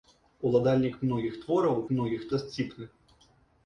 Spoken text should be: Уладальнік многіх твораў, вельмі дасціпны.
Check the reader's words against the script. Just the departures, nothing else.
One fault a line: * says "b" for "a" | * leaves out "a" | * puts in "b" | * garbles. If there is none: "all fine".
* says "многіх" for "вельмі"